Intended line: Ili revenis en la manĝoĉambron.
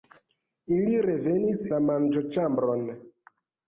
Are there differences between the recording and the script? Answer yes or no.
yes